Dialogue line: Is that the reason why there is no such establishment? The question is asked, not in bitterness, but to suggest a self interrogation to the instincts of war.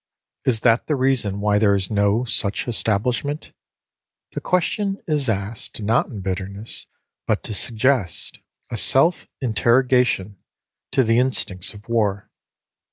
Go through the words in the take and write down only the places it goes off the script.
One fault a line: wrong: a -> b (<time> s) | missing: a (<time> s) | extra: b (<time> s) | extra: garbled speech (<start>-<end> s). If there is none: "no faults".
no faults